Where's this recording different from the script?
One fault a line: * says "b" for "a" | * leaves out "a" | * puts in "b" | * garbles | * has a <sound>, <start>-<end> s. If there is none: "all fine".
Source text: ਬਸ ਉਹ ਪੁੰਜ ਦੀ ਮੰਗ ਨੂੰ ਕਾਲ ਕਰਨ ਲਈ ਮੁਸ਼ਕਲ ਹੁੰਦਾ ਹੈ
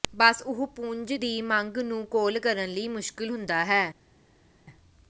all fine